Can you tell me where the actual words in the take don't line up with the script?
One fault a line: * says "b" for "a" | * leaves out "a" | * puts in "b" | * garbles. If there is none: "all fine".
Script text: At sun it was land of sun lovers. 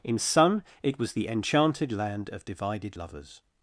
* says "In" for "At"
* puts in "the enchanted"
* says "divided" for "sun"